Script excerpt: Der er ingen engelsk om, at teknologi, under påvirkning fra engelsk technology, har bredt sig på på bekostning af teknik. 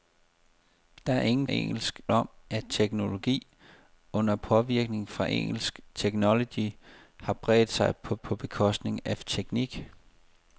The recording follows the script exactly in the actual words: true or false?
true